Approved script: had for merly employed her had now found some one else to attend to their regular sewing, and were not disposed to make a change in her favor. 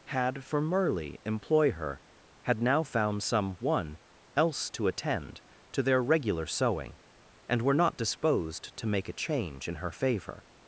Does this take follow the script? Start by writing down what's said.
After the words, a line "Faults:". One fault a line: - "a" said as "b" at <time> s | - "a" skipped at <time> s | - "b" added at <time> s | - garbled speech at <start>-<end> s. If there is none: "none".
had for merly employ her had now found some one else to attend to their regular sewing, and were not disposed to make a change in her favor.
Faults:
- "employed" said as "employ" at 1.2 s